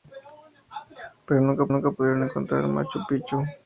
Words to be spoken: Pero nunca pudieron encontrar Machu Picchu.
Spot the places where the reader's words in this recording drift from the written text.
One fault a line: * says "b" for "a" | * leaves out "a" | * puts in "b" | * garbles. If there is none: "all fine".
* puts in "nunca"